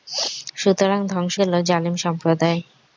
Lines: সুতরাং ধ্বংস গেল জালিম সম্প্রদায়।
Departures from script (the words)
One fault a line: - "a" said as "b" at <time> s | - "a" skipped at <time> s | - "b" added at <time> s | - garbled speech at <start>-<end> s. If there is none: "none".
none